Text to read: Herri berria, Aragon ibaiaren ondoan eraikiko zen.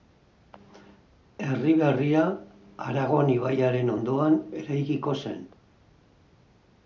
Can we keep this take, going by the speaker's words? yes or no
yes